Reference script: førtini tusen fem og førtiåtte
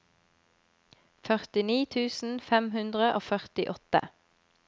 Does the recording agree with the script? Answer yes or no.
no